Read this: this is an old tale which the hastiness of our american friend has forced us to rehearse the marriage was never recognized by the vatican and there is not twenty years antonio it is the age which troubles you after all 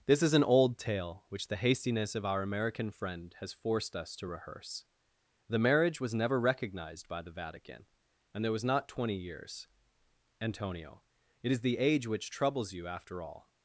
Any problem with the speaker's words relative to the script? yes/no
yes